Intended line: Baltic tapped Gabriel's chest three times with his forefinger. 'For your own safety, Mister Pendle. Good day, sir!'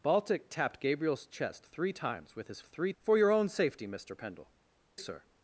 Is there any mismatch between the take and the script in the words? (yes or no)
yes